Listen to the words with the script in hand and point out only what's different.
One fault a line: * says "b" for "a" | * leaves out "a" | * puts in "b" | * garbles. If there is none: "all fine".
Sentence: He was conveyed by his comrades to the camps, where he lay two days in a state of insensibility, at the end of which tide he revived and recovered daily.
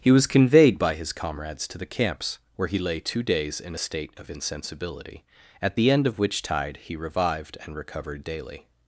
all fine